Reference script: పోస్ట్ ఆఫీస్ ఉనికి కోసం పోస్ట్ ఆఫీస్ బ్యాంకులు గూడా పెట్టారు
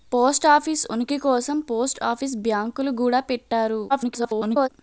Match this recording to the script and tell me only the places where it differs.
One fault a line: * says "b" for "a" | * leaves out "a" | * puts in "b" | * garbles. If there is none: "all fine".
* garbles